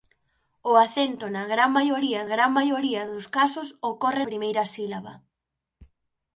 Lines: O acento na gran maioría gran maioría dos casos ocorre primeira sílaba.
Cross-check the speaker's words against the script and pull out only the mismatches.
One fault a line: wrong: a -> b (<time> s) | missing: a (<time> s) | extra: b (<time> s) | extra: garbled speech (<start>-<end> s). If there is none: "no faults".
no faults